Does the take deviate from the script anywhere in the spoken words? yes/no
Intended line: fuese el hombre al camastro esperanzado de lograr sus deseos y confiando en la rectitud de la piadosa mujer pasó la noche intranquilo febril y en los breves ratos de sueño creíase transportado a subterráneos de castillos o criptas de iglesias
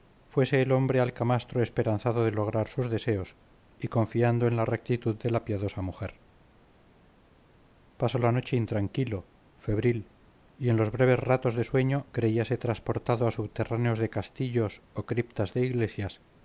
no